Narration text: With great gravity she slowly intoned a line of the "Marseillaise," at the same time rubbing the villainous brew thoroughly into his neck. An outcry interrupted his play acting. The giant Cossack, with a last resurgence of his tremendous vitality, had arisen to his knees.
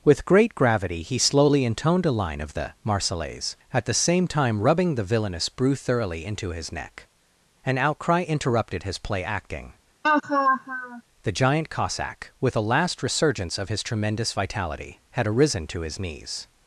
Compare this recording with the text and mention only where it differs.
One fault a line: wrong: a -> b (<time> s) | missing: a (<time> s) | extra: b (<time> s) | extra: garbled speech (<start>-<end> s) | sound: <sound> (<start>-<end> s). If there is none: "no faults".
wrong: she -> he (1.0 s)
sound: laugh (10.0-11.0 s)